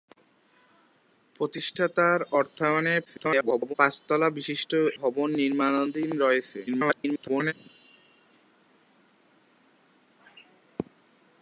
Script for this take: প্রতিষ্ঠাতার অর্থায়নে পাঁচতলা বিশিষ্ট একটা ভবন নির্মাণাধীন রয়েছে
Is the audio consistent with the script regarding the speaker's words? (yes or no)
no